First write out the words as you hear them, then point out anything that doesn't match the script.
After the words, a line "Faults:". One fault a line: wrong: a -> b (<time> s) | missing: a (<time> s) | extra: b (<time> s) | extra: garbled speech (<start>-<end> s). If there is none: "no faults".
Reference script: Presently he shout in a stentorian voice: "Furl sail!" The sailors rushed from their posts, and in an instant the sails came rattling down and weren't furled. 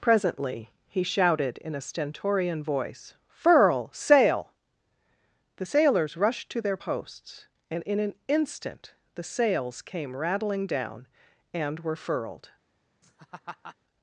Presently he shouted in a stentorian voice: "Furl sail!" The sailors rushed to their posts, and in an instant the sails came rattling down and were furled.
Faults:
wrong: shout -> shouted (1.0 s)
wrong: from -> to (6.5 s)
wrong: weren't -> were (11.8 s)